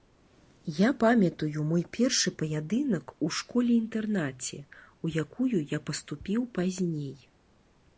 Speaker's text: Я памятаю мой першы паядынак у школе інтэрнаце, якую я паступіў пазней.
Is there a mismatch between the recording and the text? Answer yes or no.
yes